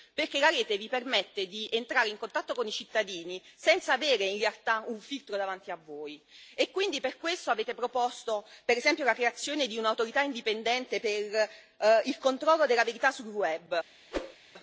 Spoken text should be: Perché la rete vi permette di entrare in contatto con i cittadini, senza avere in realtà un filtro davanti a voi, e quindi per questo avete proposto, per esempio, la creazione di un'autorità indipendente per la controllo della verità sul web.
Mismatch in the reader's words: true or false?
true